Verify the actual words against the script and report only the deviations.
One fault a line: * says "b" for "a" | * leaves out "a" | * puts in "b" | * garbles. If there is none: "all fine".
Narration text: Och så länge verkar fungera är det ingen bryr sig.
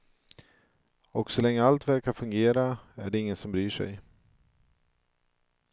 * puts in "allt"
* puts in "som"